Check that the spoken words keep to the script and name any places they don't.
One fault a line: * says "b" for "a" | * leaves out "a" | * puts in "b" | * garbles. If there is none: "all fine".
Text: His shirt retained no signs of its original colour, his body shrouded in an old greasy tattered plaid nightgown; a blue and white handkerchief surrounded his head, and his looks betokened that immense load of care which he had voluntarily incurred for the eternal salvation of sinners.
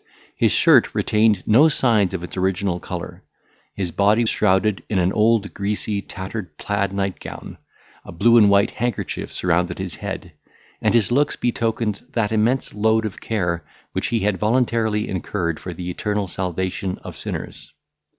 all fine